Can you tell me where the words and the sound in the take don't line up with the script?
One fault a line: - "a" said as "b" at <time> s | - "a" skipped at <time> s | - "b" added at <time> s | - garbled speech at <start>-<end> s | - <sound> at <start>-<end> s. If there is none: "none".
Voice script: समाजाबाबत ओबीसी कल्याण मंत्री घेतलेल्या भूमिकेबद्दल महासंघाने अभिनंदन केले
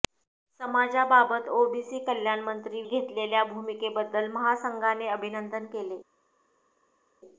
none